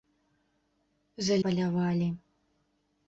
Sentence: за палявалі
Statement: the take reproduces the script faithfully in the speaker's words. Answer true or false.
true